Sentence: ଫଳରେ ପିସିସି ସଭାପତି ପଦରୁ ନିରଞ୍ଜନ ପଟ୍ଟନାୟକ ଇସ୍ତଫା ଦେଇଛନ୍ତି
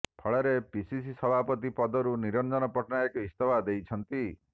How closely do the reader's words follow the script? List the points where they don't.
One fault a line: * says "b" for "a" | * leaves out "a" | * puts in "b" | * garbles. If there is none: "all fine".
all fine